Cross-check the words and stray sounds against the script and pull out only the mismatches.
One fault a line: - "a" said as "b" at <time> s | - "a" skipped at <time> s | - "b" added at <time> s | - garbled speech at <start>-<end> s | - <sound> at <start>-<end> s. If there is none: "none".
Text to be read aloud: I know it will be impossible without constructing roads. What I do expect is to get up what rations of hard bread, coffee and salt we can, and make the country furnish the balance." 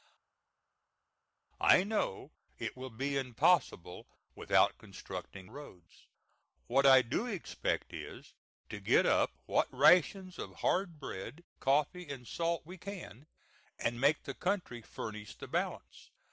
none